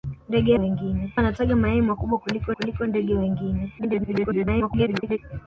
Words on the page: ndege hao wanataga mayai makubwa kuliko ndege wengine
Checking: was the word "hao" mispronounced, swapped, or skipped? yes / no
yes